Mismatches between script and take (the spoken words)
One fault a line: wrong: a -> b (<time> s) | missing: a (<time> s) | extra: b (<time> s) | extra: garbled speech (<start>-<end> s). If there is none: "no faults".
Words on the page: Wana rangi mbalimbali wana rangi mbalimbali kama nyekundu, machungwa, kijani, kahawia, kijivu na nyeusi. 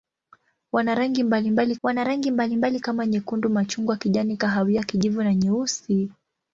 no faults